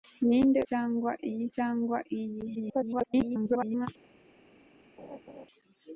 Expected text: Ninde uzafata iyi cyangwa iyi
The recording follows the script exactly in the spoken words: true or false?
false